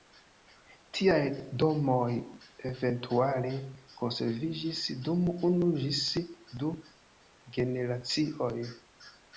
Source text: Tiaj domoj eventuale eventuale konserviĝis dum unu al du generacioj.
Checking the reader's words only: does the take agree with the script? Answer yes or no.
no